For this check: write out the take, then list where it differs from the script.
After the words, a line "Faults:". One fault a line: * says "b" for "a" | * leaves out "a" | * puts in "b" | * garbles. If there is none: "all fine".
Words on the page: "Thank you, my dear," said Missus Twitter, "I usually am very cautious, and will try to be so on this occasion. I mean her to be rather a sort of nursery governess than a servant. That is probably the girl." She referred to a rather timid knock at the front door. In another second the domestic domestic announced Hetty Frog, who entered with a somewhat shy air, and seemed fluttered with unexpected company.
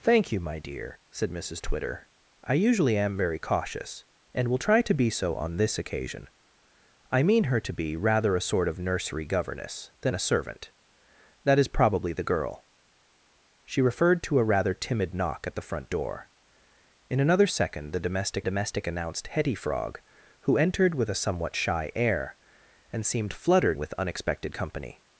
"Thank you, my dear," said Missus Twitter, "I usually am very cautious, and will try to be so on this occasion. I mean her to be rather a sort of nursery governess than a servant. That is probably the girl." She referred to a rather timid knock at the front door. In another second the domestic domestic announced Hetty Frog, who entered with a somewhat shy air, and seemed fluttered with unexpected company.
Faults:
all fine